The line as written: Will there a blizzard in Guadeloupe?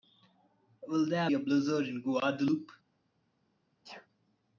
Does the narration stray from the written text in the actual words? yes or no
no